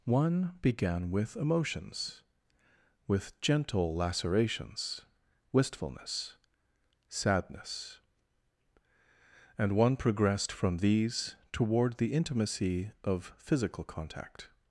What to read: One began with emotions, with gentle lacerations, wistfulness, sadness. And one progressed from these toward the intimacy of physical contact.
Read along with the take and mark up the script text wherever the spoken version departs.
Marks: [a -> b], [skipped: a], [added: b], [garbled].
One began with emotions, with gentle lacerations, wistfulness, sadness. And one progressed from these toward the intimacy of physical contact.